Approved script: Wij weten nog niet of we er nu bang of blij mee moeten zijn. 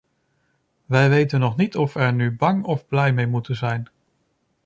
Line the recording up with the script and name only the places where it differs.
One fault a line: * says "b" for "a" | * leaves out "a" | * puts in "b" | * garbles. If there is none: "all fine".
all fine